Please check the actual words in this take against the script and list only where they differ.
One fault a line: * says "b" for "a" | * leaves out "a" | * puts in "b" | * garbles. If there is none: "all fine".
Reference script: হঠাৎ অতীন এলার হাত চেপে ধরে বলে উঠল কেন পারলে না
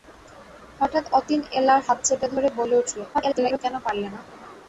* garbles